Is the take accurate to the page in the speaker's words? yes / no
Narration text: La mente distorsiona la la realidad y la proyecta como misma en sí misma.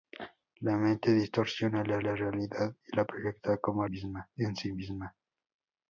yes